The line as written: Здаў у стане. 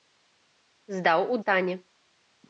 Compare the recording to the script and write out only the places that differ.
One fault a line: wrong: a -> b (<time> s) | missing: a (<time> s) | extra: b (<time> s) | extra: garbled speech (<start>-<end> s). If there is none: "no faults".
no faults